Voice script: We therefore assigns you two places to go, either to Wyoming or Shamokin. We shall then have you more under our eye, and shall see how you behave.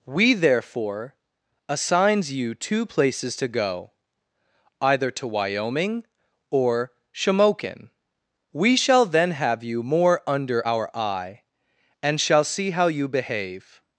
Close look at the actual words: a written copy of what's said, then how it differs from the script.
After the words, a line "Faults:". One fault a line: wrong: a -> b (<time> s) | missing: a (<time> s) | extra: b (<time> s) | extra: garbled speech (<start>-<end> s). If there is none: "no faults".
We therefore assigns you two places to go, either to Wyoming or Shamokin. We shall then have you more under our eye, and shall see how you behave.
Faults:
no faults